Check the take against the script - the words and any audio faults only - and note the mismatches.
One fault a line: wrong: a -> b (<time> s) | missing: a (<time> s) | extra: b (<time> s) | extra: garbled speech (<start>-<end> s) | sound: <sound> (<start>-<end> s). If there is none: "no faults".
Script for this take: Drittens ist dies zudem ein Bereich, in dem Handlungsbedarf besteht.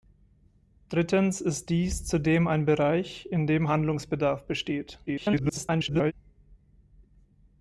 extra: garbled speech (5.1-6.1 s)